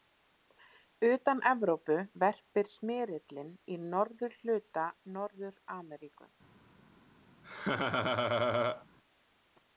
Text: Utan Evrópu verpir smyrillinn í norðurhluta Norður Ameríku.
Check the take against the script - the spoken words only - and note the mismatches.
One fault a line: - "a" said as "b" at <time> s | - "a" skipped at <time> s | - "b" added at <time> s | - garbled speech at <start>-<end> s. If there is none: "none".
none